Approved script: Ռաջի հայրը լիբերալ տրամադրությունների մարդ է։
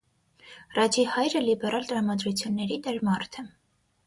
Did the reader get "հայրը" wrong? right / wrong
right